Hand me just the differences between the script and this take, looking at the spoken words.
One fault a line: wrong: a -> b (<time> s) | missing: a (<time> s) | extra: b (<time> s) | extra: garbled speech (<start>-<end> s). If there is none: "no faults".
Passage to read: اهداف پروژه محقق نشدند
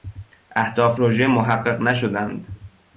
no faults